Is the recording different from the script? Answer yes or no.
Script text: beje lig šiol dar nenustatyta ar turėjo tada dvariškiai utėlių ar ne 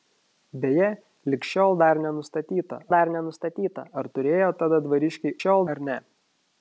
yes